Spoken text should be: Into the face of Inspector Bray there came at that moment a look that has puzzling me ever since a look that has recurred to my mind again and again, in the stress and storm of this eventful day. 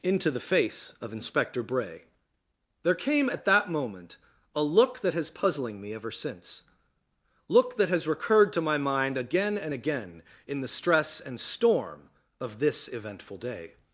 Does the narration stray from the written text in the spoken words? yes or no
yes